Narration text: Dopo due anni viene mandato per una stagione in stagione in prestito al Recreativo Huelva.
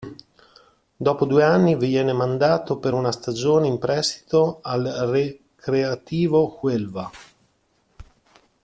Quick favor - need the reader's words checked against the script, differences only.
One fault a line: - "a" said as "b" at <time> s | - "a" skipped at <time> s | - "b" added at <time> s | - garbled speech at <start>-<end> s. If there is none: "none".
- "stagione in" skipped at 3.8 s